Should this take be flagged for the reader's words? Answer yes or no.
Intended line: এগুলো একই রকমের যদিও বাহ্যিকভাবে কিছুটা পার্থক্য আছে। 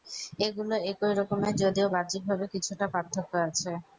no